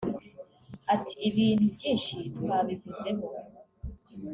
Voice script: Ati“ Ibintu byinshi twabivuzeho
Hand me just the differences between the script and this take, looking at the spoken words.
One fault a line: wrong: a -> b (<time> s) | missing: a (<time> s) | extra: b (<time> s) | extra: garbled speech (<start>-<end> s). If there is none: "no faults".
no faults